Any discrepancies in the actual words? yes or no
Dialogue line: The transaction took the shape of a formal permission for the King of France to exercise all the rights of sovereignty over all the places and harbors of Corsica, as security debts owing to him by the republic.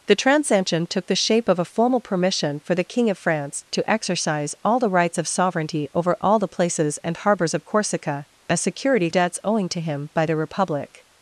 no